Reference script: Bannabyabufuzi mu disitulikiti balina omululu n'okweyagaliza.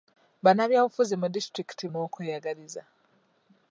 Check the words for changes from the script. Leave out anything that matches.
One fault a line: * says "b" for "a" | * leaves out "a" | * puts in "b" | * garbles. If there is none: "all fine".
* leaves out "balina omululu"